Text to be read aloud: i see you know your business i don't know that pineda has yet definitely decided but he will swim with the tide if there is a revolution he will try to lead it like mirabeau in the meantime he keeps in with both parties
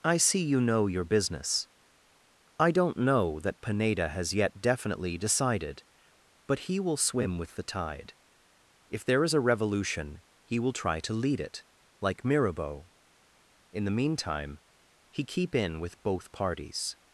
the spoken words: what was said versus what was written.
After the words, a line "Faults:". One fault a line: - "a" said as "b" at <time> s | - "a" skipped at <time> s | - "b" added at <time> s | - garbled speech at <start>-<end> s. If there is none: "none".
i see you know your business i don't know that pineda has yet definitely decided but he will swim with the tide if there is a revolution he will try to lead it like mirabeau in the meantime he keep in with both parties
Faults:
- "keeps" said as "keep" at 15.2 s